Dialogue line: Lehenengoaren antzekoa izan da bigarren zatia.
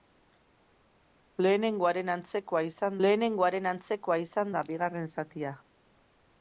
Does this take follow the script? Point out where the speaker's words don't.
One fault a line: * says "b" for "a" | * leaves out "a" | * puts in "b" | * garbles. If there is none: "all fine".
* puts in "lehenengoaren antzekoa izan"